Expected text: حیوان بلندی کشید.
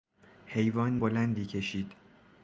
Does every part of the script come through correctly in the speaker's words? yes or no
yes